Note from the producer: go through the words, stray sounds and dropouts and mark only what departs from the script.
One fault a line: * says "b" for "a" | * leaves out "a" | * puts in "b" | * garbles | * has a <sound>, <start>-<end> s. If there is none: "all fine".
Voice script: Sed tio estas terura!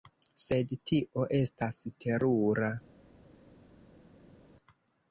all fine